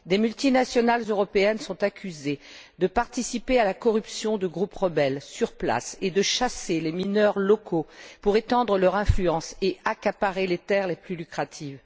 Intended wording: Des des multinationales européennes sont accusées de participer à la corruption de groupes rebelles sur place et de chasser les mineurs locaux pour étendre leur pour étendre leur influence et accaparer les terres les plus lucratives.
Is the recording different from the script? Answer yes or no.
yes